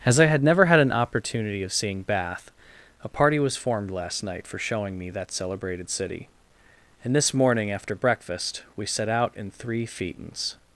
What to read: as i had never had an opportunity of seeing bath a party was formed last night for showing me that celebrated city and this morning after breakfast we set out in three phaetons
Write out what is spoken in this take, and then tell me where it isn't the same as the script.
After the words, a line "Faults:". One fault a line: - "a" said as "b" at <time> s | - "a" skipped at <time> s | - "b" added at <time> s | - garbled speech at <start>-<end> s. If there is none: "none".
as i had never had an opportunity of seeing bath a party was formed last night for showing me that celebrated city and this morning after breakfast we set out in three phaetons
Faults:
none